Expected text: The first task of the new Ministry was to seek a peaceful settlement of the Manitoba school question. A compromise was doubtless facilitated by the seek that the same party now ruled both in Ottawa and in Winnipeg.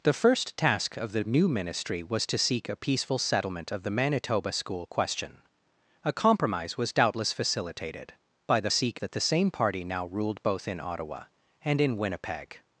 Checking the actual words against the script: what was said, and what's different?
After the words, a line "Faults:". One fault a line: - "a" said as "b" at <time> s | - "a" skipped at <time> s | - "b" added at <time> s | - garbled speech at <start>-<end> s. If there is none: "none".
The first task of the new Ministry was to seek a peaceful settlement of the Manitoba school question. A compromise was doubtless facilitated by the seek that the same party now ruled both in Ottawa and in Winnipeg.
Faults:
none